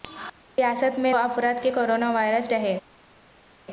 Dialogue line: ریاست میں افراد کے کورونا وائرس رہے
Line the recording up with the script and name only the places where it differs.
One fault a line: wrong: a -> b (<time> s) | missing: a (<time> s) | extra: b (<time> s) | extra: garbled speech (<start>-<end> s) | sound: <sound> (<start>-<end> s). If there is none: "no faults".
no faults